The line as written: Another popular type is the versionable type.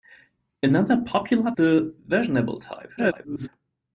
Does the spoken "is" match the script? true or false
false